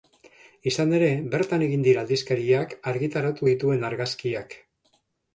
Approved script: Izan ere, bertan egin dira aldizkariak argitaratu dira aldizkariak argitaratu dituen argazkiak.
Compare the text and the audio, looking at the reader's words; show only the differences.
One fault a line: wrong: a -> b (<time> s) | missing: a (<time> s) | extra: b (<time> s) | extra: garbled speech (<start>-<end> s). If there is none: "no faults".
missing: dira aldizkariak argitaratu (3.5 s)